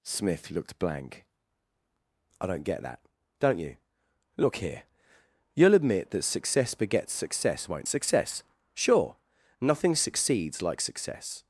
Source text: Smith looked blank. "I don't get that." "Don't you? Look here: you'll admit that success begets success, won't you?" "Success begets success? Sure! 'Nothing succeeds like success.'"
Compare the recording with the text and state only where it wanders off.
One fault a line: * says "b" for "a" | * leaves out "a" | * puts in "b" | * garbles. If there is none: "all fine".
* leaves out "you Success begets"